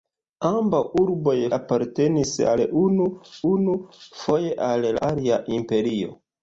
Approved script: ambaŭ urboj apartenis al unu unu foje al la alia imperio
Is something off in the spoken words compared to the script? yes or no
no